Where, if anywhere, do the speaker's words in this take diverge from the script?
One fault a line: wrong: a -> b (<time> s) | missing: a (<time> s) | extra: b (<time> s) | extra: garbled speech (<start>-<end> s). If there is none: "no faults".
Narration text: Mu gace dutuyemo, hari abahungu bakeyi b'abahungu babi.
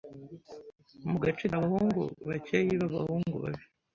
missing: dutuyemo hari (1.4 s)